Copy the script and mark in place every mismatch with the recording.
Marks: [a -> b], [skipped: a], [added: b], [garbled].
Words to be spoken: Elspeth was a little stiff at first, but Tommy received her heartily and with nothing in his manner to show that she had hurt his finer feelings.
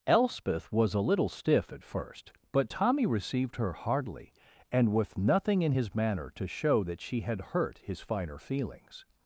Elspeth was a little stiff at first, but Tommy received her heartily and with nothing in his manner to show that she had hurt his finer feelings.